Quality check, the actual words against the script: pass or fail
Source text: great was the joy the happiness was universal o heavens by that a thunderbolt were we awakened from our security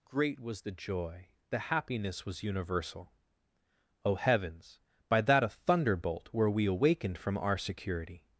pass